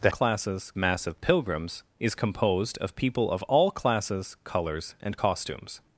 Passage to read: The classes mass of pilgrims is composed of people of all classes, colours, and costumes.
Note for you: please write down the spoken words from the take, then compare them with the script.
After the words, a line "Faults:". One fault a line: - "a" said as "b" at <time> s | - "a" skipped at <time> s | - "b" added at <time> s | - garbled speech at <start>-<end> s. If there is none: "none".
The classes mass of pilgrims is composed of people of all classes, colours, and costumes.
Faults:
none